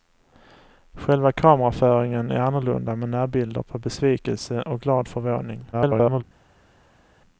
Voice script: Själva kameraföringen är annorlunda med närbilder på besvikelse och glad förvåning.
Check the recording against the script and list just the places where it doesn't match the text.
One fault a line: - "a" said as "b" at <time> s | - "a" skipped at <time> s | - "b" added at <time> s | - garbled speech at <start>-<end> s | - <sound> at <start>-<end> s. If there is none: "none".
- garbled speech at 5.7-6.2 s